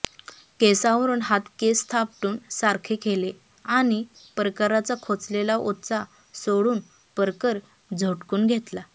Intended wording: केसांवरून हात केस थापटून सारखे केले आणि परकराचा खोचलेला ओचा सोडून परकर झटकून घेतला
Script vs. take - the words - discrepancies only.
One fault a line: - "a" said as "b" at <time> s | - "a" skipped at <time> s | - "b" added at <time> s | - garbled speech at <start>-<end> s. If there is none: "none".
none